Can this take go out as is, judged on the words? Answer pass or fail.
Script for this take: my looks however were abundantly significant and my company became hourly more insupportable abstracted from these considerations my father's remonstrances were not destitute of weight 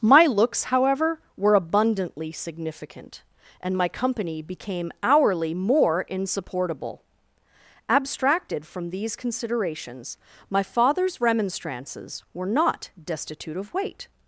pass